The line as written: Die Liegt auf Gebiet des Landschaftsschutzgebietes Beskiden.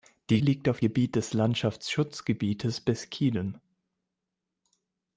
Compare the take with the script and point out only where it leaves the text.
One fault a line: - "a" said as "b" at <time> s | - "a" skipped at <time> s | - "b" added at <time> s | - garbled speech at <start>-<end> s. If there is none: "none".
none